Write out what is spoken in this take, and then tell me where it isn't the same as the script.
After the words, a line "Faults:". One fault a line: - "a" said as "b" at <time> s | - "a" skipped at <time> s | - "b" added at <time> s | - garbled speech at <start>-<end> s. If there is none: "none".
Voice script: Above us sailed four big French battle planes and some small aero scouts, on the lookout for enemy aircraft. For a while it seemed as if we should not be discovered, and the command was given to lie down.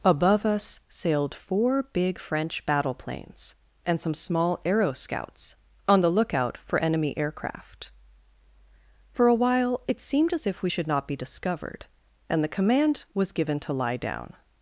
Above us sailed four big French battle planes and some small aero scouts, on the lookout for enemy aircraft. For a while it seemed as if we should not be discovered, and the command was given to lie down.
Faults:
none